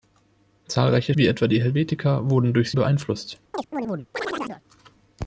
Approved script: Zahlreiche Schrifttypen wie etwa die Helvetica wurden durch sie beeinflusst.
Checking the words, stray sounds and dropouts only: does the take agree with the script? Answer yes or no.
no